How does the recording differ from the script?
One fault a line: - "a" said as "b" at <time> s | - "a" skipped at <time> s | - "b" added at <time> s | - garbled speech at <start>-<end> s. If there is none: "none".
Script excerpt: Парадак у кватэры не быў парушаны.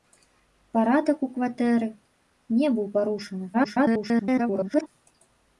- garbled speech at 3.5-4.9 s